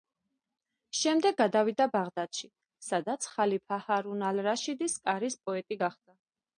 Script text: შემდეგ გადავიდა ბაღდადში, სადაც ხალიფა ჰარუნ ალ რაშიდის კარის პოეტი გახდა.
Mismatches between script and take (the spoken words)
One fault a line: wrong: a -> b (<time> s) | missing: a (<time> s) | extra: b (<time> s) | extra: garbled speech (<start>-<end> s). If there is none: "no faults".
no faults